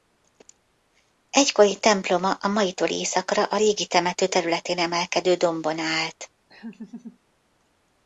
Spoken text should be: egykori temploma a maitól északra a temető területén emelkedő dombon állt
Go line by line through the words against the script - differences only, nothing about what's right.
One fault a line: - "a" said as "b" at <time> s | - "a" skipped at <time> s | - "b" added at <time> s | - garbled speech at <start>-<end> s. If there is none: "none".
- "régi" added at 3.6 s